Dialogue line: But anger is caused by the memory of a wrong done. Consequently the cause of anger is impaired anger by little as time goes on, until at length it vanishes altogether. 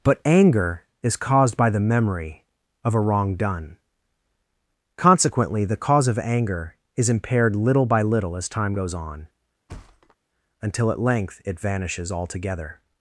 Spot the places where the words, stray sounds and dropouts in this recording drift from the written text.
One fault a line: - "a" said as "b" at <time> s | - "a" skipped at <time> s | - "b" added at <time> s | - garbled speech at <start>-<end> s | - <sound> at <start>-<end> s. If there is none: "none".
- "anger" said as "little" at 7.5 s
- thud at 9.7-10.2 s